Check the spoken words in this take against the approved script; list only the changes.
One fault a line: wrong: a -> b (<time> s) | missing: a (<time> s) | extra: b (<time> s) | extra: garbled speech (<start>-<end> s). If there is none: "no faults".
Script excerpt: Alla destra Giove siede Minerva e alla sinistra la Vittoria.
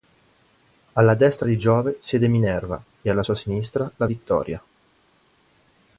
extra: di (1.4 s)
extra: sua (3.2 s)